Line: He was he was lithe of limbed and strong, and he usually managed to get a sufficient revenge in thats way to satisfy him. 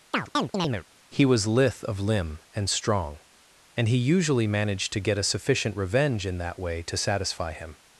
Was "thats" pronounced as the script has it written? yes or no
no